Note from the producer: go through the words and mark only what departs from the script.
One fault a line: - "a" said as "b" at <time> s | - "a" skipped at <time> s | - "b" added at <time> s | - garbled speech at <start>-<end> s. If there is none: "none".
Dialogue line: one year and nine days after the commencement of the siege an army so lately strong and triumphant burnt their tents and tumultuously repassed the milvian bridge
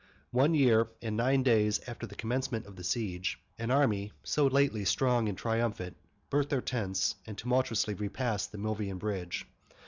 none